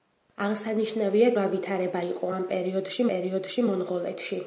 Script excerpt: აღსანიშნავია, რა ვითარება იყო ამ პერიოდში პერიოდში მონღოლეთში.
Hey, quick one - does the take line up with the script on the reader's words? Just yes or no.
yes